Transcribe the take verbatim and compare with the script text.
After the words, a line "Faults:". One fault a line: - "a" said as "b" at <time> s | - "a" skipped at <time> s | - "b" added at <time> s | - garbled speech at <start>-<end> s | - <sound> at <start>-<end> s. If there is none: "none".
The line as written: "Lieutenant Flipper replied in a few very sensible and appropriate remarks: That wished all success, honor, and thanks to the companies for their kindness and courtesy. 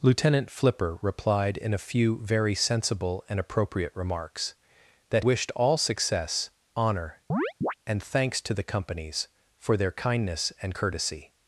"Lieutenant Flipper replied in a few very sensible and appropriate remarks: That wished all success, honor, and thanks to the companies for their kindness and courtesy.
Faults:
- chirp at 7.3-7.7 s